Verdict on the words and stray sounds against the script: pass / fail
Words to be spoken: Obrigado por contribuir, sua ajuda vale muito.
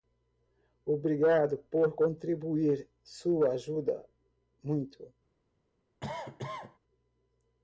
fail